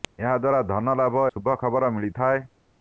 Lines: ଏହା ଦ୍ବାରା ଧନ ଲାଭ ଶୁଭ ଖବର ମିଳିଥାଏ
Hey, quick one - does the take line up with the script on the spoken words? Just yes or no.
yes